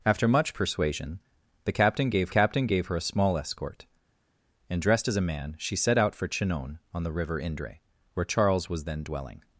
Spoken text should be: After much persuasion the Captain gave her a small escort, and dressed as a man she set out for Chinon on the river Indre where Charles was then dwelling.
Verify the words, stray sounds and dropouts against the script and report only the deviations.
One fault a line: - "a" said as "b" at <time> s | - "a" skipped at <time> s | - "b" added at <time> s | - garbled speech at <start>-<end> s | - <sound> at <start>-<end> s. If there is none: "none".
- "Captain gave" added at 2.3 s